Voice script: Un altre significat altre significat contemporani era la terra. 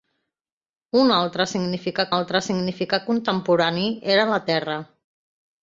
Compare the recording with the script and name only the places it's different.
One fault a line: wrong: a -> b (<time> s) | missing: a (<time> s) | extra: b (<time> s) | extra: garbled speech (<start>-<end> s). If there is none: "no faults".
no faults